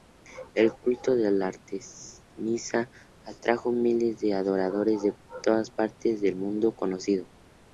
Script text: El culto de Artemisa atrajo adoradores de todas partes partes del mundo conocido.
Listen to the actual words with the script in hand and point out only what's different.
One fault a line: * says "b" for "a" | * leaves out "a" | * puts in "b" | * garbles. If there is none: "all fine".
* puts in "miles de"
* leaves out "partes"